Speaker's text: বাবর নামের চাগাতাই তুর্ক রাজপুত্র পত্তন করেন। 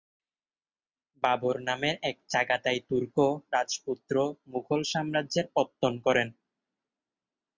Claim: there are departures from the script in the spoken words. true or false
true